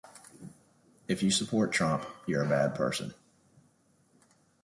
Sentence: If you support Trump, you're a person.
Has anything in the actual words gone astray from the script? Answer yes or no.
yes